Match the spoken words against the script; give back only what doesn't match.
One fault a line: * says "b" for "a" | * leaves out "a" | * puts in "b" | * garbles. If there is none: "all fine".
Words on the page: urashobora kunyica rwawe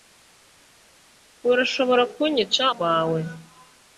all fine